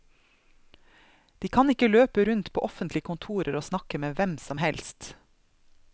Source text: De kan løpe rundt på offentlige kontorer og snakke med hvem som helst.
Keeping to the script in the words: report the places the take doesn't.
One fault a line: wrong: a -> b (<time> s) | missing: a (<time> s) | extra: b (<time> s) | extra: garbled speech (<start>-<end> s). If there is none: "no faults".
extra: ikke (1.7 s)